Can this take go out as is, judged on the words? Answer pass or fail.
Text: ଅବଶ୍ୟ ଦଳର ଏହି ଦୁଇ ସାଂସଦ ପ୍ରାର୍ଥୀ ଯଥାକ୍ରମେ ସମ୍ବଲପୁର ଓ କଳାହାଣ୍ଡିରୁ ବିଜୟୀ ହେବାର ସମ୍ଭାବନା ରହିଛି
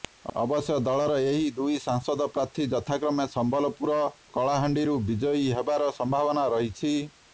fail